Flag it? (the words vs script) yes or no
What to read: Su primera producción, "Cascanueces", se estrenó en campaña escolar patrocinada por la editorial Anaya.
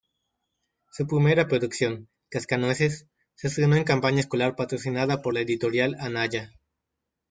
no